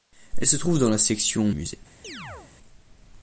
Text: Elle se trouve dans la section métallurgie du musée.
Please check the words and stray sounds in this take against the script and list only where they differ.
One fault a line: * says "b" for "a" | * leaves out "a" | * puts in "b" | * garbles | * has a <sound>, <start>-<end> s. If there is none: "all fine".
* leaves out "métallurgie du"
* has a chirp, 2.0-2.5 s